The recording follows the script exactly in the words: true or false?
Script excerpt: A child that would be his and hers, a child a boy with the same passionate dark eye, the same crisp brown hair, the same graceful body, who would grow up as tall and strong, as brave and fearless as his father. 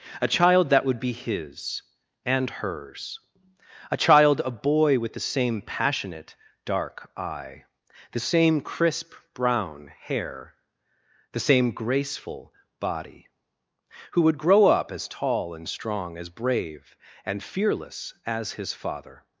true